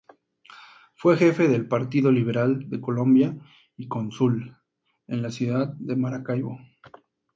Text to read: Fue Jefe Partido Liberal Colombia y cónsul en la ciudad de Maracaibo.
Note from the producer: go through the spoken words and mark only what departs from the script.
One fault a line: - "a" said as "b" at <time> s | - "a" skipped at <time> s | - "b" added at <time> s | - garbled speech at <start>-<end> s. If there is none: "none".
- "del" added at 1.5 s
- "de" added at 2.7 s